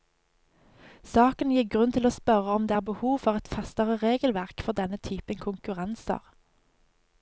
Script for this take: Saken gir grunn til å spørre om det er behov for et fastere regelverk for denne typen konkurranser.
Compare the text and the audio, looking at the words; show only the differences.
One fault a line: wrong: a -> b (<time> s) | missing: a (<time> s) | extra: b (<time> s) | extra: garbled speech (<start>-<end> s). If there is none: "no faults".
no faults